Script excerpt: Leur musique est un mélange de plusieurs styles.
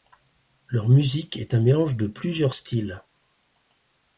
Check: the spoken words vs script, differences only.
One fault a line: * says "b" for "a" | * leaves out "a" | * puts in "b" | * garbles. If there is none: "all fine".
all fine